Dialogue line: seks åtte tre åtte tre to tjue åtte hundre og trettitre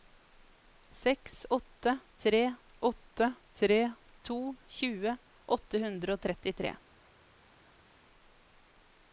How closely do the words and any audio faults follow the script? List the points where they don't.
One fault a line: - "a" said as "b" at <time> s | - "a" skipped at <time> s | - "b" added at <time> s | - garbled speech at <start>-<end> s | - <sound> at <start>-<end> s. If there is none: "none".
none